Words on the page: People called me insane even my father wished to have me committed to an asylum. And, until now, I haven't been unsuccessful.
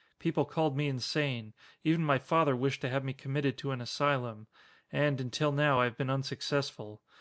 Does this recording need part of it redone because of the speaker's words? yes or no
yes